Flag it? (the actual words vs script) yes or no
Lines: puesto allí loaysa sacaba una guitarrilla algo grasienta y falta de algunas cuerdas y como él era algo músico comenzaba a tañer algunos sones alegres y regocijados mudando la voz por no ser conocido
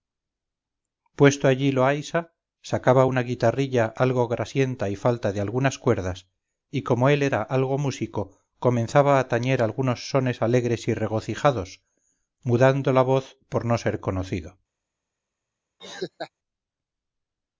no